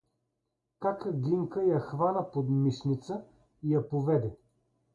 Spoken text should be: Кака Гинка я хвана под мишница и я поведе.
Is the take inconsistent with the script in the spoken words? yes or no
no